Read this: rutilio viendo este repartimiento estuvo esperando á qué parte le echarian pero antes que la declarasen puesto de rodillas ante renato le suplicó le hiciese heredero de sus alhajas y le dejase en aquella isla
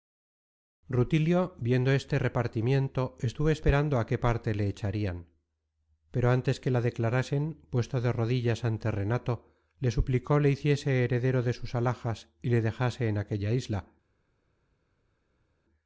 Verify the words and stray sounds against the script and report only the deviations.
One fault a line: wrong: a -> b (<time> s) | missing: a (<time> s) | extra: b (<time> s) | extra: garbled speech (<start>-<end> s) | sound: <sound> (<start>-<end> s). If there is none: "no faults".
no faults